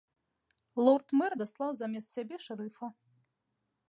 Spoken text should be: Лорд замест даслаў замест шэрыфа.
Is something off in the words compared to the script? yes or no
yes